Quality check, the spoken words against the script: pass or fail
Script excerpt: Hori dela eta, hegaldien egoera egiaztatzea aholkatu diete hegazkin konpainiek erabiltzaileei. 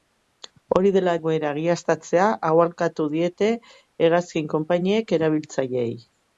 fail